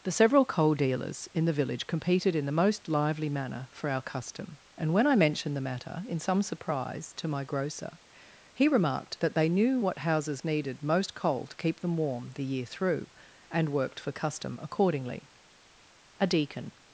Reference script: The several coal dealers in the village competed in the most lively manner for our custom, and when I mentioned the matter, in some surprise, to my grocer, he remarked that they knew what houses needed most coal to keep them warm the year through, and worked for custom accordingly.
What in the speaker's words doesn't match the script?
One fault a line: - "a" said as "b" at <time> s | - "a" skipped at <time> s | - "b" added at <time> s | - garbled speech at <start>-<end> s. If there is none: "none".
- "A deacon" added at 16.2 s